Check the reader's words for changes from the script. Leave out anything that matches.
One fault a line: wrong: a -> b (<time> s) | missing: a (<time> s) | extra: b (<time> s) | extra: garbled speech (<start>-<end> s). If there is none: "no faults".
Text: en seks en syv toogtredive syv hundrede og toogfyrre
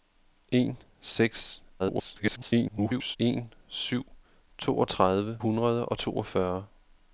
extra: garbled speech (1.8-3.2 s)
missing: syv (5.4 s)